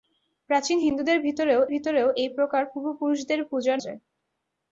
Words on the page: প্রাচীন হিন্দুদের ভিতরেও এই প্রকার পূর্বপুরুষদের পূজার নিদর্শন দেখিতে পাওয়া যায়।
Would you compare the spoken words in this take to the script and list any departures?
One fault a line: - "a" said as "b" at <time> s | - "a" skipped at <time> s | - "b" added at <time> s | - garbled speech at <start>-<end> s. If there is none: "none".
- "ভিতরেও" added at 1.7 s
- "নিদর্শন দেখিতে পাওয়া" skipped at 3.8 s